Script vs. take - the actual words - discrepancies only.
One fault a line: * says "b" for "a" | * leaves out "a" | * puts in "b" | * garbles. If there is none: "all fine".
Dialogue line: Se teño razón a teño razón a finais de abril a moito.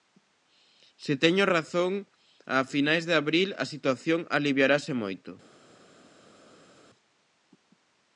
* leaves out "teño razón a"
* puts in "situación aliviarase"